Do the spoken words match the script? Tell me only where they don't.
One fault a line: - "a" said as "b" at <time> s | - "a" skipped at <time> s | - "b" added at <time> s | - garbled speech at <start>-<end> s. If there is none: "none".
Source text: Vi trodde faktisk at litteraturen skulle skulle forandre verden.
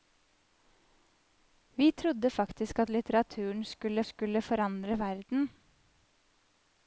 none